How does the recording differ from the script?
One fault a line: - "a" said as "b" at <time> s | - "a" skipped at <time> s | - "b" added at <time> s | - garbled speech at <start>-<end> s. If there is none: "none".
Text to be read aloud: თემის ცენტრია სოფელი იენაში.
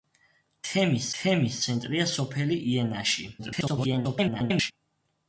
- "თემის" added at 1.2 s
- garbled speech at 3.4-4.7 s